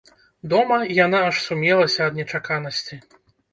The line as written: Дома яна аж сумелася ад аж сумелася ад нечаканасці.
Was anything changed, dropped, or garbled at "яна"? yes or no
no